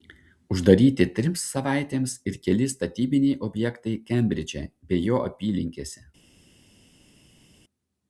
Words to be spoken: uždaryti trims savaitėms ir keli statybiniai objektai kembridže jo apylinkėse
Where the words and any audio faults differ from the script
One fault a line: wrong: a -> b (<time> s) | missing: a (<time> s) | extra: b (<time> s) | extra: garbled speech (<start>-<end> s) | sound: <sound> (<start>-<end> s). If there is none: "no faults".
extra: bei (4.9 s)